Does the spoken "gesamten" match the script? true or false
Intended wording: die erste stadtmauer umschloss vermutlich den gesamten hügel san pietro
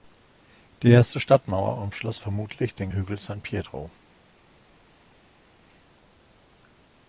false